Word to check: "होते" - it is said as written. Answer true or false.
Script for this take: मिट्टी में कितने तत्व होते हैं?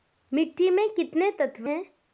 false